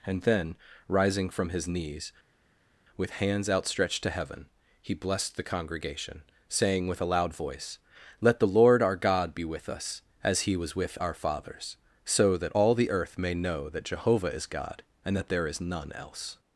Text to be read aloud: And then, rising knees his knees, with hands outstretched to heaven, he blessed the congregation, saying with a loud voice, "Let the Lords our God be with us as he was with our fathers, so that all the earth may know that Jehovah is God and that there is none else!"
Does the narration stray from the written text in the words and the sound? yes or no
yes